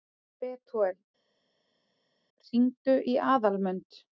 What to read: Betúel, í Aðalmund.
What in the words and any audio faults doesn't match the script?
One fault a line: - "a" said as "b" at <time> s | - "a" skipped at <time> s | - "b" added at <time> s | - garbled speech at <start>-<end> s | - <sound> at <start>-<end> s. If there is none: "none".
- "hringdu" added at 2.5 s